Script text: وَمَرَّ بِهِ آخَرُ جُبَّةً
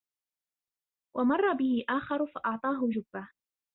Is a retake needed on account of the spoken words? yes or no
yes